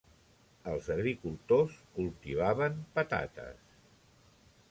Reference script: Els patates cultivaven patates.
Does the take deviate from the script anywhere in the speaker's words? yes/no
yes